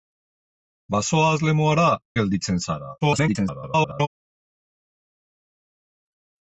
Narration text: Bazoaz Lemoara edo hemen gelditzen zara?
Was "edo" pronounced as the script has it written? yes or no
no